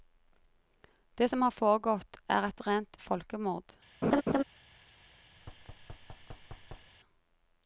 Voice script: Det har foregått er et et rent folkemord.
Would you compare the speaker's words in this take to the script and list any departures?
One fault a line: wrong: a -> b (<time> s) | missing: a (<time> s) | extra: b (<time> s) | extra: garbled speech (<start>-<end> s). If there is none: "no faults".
extra: som (1.3 s)
missing: et (2.6 s)